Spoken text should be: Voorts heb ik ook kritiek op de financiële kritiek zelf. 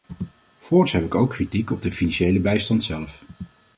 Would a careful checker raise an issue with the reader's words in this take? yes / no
yes